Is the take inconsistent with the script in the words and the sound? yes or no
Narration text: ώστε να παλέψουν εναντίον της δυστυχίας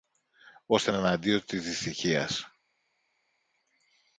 yes